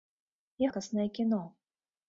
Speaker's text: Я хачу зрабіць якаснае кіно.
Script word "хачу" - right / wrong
wrong